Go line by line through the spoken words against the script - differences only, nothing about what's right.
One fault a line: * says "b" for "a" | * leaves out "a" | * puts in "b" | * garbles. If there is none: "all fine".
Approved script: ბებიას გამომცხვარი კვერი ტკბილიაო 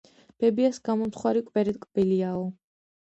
all fine